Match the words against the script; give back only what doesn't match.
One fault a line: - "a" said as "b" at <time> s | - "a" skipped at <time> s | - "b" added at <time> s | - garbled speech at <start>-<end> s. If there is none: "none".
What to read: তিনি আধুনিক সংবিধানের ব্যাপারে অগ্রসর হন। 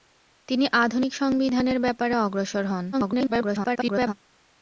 - garbled speech at 2.9-4.1 s